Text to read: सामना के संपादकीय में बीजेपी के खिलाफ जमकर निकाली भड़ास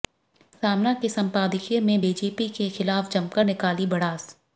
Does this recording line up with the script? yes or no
yes